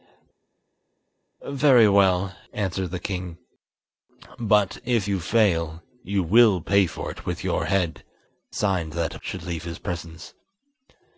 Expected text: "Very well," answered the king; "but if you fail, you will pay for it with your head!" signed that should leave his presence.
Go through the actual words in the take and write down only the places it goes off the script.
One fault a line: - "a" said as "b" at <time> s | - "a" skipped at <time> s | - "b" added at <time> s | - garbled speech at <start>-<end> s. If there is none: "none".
none